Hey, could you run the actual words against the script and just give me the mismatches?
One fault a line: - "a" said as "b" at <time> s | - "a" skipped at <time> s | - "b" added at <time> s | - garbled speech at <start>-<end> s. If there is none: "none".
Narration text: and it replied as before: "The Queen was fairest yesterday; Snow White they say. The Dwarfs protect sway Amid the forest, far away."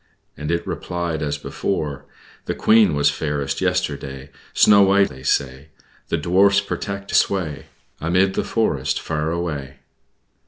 none